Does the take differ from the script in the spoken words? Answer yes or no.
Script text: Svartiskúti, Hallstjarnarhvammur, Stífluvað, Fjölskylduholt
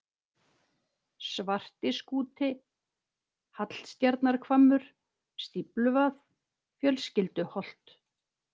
no